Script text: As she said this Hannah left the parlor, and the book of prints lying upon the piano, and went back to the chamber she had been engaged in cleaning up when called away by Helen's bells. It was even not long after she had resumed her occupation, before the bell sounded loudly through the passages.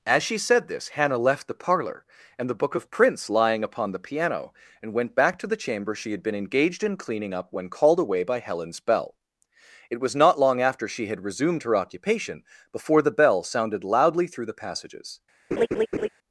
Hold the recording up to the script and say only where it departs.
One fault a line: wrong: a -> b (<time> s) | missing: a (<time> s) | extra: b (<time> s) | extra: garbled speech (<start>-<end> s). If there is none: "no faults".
wrong: bells -> bell (8.8 s)
missing: even (10.2 s)